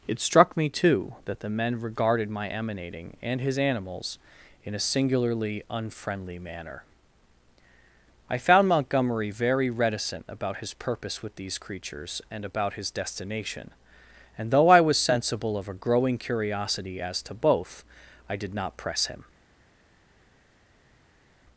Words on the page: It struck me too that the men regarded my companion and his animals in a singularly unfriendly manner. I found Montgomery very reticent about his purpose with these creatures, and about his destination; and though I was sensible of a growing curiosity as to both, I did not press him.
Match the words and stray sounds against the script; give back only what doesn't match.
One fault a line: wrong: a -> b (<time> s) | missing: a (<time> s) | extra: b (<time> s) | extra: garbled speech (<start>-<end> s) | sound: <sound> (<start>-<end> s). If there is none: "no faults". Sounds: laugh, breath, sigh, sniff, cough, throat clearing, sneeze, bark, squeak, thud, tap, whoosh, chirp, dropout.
wrong: companion -> emanating (2.5 s)